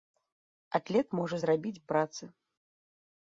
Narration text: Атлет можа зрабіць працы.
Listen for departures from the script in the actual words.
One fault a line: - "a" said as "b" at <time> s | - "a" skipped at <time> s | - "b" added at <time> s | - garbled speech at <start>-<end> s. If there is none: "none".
none